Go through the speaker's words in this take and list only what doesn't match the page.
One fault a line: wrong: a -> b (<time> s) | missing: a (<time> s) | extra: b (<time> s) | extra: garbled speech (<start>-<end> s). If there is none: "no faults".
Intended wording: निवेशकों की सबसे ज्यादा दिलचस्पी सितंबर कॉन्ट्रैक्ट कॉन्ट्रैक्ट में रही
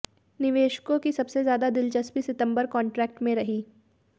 missing: कॉन्ट्रैक्ट (3.2 s)